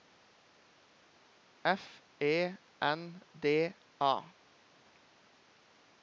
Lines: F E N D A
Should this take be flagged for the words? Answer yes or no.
no